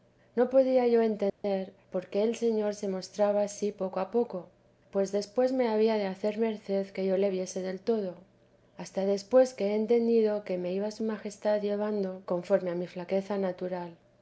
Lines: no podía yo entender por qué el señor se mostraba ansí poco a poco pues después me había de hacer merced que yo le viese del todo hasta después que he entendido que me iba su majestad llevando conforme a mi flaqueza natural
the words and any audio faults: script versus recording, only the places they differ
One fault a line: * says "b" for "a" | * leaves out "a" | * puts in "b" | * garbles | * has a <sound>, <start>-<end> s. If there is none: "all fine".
* has a dropout, 1.3-1.4 s